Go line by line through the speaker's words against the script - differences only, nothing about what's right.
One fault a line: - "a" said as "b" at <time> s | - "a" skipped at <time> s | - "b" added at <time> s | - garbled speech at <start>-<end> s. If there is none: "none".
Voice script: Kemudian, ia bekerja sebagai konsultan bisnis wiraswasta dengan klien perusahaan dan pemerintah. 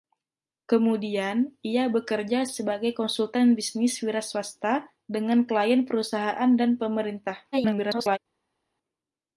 - garbled speech at 7.5-8.2 s